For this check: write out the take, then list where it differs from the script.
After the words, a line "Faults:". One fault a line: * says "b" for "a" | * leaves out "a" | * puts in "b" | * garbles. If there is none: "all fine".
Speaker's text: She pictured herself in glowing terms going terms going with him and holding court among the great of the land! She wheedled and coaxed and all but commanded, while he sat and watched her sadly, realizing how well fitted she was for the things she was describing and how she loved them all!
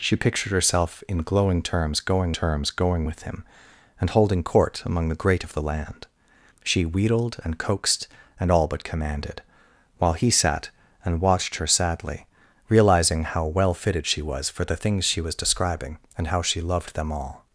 She pictured herself in glowing terms going terms going with him and holding court among the great of the land! She wheedled and coaxed and all but commanded, while he sat and watched her sadly, realizing how well fitted she was for the things she was describing and how she loved them all!
Faults:
all fine